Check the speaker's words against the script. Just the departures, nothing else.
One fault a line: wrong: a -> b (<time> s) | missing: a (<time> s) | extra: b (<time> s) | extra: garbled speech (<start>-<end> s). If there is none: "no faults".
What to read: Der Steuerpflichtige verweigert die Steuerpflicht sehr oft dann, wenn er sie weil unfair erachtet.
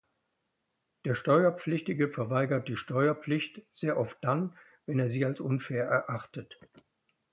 wrong: weil -> als (5.2 s)